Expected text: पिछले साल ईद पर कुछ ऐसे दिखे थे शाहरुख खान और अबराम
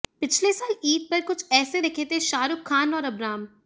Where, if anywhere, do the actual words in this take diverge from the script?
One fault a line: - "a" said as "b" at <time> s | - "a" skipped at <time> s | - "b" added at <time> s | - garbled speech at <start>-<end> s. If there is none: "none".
none